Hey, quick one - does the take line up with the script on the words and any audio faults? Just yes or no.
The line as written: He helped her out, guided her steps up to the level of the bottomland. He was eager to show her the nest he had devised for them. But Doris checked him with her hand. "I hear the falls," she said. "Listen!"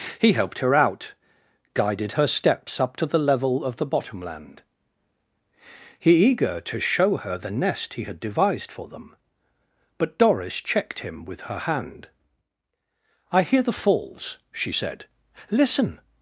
no